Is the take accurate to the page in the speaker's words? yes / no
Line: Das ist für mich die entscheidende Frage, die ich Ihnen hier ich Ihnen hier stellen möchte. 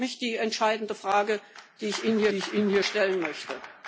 yes